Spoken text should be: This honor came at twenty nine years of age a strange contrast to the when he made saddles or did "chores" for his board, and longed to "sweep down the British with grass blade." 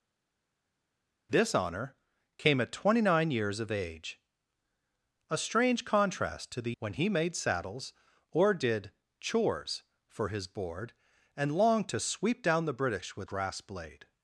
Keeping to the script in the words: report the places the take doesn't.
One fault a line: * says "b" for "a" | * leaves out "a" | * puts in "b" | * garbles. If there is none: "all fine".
all fine